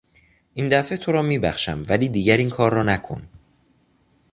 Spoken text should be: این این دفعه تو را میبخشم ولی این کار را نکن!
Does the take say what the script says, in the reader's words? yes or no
no